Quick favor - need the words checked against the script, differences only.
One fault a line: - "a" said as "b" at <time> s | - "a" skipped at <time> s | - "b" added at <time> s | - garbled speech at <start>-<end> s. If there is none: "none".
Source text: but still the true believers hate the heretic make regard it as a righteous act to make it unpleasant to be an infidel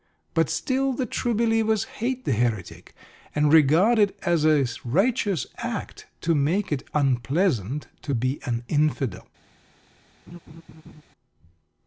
- "make" said as "and" at 3.4 s